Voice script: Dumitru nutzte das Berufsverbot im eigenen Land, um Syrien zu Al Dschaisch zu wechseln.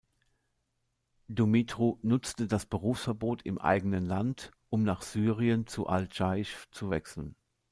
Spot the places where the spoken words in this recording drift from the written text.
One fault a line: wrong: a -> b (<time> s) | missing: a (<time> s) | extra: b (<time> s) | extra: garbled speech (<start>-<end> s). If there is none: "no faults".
extra: nach (4.8 s)